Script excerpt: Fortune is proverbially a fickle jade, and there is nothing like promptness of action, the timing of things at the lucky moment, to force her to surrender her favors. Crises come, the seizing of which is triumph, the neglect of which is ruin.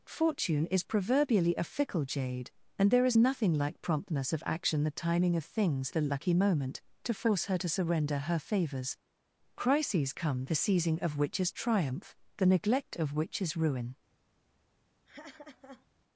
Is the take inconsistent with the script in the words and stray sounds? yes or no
yes